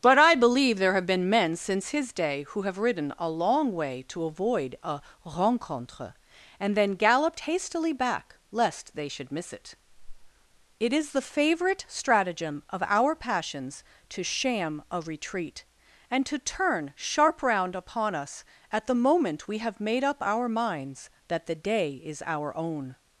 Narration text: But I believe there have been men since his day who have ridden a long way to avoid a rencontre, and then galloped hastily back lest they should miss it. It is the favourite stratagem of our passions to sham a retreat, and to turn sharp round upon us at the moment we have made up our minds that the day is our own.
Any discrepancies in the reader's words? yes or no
no